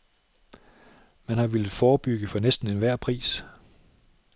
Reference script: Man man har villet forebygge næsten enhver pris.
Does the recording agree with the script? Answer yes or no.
no